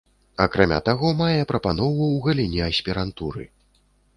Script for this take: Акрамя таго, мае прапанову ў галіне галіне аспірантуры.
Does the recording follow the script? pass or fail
fail